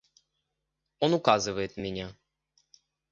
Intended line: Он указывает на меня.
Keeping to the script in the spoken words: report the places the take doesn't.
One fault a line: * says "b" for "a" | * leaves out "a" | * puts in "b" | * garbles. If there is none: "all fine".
all fine